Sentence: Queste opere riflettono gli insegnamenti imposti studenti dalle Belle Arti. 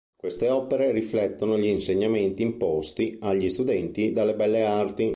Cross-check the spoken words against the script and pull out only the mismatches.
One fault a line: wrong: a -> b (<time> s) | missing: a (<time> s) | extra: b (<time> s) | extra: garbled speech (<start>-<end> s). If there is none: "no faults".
extra: agli (3.2 s)